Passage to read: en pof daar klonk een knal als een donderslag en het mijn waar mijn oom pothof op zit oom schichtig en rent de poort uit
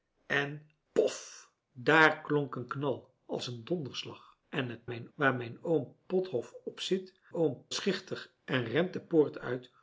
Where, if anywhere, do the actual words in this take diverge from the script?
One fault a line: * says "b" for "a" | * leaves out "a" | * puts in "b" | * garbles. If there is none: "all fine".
all fine